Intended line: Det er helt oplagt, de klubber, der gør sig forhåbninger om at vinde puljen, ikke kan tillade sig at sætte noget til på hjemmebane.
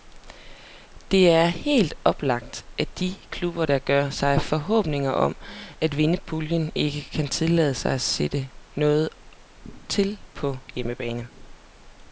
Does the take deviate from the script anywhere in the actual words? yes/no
yes